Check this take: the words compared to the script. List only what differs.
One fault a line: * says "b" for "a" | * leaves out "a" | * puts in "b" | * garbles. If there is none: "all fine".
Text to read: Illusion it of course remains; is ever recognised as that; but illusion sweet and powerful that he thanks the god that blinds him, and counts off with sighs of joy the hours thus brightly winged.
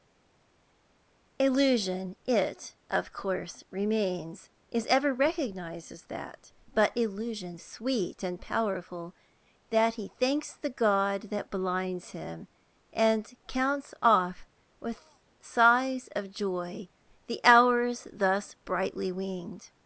all fine